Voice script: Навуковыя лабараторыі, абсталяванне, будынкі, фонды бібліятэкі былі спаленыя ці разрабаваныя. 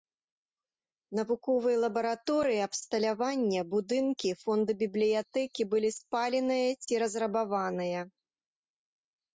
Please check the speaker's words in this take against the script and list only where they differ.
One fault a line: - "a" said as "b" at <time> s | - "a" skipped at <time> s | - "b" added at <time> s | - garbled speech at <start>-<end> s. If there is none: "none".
none